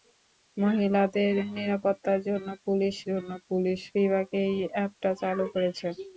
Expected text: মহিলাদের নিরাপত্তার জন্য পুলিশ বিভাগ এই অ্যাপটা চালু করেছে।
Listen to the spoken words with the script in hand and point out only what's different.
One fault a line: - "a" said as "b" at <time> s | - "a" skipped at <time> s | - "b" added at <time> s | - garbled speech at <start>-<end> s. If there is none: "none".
- "জন্য পুলিশ" added at 3.1 s